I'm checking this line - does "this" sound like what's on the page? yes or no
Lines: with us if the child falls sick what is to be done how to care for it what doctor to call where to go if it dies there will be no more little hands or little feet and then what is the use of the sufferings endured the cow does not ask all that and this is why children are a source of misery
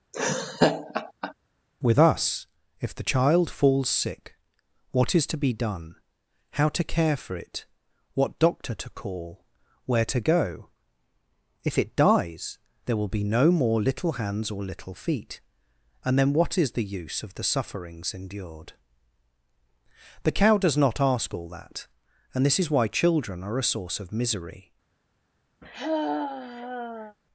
yes